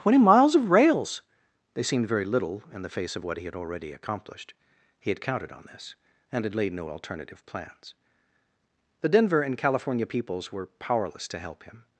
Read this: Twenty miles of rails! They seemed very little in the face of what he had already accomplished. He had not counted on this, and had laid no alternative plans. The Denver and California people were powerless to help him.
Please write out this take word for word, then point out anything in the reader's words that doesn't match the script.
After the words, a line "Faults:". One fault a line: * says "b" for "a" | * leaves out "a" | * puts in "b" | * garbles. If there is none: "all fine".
Twenty miles of rails! They seemed very little in the face of what he had already accomplished. He had counted on this, and had laid no alternative plans. The Denver and California peoples were powerless to help him.
Faults:
* leaves out "not"
* says "peoples" for "people"